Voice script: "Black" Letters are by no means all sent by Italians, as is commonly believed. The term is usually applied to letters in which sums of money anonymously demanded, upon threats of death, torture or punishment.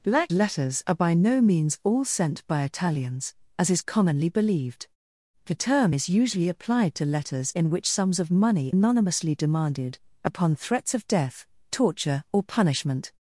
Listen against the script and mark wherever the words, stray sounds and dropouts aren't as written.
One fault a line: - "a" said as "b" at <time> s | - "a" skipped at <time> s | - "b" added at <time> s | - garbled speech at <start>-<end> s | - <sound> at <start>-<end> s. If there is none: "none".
none